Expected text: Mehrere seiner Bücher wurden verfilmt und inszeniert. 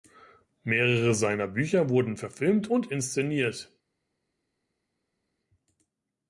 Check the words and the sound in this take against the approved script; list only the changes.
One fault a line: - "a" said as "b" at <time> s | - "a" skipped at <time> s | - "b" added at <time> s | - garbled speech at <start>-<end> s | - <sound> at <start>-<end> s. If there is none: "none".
none